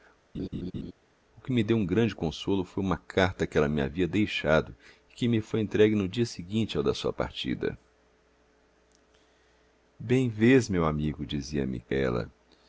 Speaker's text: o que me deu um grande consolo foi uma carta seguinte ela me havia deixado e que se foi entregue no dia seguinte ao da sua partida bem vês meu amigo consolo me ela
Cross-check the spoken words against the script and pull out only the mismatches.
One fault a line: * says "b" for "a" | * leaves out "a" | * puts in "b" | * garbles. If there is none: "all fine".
* says "que" for "seguinte"
* says "me" for "se"
* says "dizia" for "consolo"